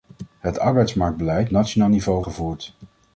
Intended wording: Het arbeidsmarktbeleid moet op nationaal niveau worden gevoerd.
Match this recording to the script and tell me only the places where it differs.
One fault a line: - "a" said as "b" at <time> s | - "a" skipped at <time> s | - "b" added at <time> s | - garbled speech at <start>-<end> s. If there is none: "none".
- "moet op" skipped at 1.5 s
- "worden" skipped at 2.2 s